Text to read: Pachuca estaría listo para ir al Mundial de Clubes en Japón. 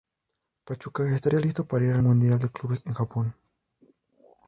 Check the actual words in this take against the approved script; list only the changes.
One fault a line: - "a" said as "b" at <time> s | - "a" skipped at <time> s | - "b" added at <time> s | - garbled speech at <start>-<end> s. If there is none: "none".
none